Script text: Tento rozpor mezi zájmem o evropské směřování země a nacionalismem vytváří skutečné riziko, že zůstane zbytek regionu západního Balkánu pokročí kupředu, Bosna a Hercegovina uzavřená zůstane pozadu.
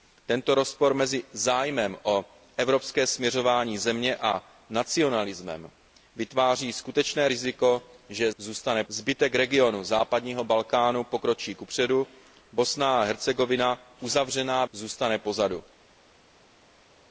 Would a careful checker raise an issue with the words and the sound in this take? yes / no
no